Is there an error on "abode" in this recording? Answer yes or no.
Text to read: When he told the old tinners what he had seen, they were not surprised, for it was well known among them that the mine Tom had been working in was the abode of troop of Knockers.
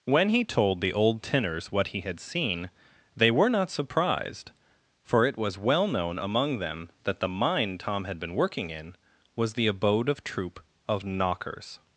no